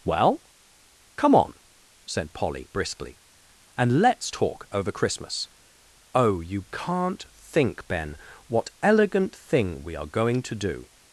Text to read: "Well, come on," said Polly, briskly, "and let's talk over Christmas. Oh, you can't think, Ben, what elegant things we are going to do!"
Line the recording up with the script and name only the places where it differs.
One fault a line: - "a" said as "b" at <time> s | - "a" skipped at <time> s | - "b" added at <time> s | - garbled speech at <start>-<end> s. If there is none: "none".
- "things" said as "thing" at 9.3 s